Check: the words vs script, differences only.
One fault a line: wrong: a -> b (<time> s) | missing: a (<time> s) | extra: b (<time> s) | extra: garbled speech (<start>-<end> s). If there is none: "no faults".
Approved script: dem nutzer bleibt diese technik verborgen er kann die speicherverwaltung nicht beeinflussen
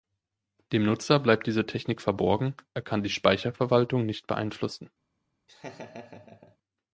no faults